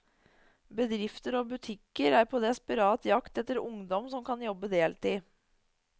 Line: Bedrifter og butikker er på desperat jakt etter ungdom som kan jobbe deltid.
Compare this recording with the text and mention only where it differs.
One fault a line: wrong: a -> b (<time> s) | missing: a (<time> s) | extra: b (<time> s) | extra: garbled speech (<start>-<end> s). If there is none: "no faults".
no faults